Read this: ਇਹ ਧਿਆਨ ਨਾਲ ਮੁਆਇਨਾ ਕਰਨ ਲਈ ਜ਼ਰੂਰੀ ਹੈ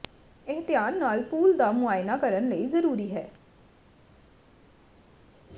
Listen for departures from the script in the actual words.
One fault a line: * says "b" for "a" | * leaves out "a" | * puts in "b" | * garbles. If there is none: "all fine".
* puts in "ਪੂਲ ਦਾ"